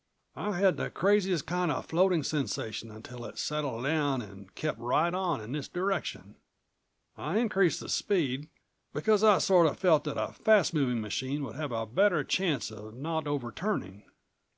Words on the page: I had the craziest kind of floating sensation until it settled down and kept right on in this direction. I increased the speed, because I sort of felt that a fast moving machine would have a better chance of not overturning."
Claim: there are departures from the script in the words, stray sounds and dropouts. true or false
false